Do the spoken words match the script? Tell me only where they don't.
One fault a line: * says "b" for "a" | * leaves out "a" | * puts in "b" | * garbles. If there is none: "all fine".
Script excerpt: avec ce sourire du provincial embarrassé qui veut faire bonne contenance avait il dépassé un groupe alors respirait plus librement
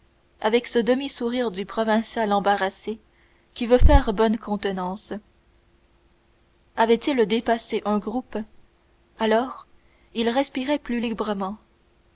* puts in "demi"
* puts in "il"